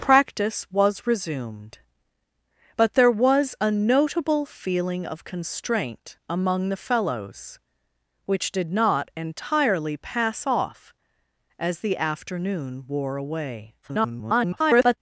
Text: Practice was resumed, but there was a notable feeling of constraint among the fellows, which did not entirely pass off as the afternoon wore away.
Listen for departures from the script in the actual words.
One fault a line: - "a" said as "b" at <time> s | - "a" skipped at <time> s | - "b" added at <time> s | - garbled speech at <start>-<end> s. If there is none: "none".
- garbled speech at 13.8-15.0 s